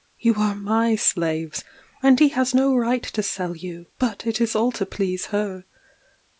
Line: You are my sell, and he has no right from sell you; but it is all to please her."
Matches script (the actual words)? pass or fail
fail